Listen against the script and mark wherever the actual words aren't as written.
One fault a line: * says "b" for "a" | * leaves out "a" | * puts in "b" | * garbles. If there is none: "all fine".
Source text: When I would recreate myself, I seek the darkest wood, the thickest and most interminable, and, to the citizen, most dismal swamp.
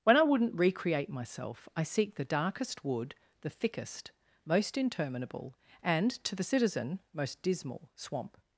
* says "wouldn't" for "would"
* leaves out "and"